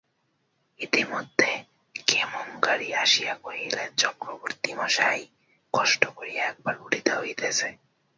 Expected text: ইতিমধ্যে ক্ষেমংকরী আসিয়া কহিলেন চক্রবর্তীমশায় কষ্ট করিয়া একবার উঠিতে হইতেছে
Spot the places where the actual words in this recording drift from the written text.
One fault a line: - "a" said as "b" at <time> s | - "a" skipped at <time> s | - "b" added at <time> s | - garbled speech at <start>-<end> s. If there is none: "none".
none